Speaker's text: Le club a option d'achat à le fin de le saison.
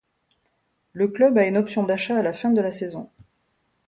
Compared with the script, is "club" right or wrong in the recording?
right